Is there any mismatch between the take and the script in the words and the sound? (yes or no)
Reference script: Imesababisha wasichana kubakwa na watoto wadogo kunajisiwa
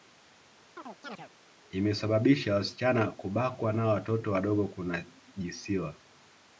yes